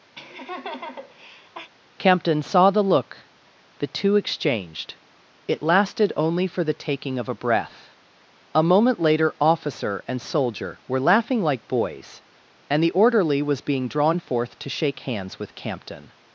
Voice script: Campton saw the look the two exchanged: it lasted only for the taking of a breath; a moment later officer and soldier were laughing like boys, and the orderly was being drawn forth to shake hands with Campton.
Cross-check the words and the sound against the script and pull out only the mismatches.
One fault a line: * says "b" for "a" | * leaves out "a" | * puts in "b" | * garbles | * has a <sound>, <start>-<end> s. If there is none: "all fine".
* has a laugh, 0.2-1.7 s